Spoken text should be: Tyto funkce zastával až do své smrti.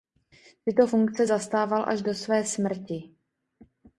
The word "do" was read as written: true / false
true